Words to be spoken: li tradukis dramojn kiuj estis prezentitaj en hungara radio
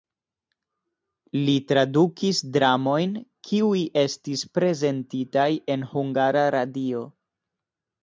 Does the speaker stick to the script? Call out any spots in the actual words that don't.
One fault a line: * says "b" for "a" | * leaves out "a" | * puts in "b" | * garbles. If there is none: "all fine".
all fine